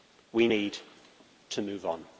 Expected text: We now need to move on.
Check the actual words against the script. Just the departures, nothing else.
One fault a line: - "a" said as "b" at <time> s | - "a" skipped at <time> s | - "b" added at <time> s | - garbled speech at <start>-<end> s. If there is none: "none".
- "now" skipped at 0.5 s